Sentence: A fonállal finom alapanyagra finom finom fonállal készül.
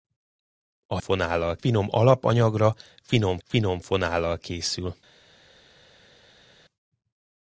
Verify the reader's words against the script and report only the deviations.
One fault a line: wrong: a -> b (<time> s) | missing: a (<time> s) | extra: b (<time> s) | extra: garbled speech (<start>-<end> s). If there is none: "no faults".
no faults